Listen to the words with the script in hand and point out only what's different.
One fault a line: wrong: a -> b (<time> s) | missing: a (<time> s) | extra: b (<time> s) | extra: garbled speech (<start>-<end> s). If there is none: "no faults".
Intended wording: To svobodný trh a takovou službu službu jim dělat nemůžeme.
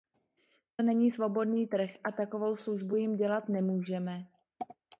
extra: není (0.8 s)
missing: službu (3.0 s)